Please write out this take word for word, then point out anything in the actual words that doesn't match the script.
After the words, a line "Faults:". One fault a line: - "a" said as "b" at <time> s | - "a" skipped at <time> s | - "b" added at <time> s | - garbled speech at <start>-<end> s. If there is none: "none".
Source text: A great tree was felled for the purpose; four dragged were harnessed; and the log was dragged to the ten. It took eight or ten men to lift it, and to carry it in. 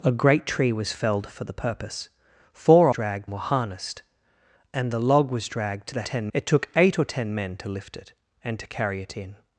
A great tree was felled for the purpose; four dragged were harnessed; and the log was dragged to the ten. It took eight or ten men to lift it, and to carry it in.
Faults:
none